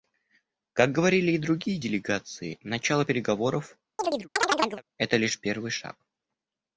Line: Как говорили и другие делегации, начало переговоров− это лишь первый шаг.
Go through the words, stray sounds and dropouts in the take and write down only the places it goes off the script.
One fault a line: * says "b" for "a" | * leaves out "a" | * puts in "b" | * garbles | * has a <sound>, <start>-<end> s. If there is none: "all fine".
* has a chirp, 4.0-4.8 s